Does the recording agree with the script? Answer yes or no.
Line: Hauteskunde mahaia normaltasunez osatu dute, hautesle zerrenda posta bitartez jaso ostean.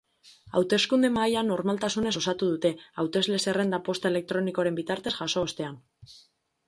no